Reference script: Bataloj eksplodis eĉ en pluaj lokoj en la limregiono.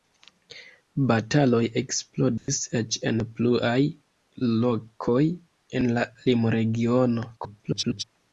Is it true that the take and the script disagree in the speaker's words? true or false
true